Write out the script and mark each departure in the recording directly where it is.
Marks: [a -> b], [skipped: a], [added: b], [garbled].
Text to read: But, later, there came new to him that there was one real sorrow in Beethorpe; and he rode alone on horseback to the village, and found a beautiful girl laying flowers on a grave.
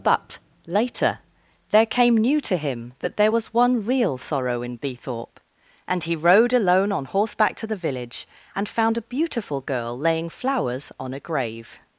But, later, there came new to him that there was one real sorrow in Beethorpe; and he rode alone on horseback to the village, and found a beautiful girl laying flowers on a grave.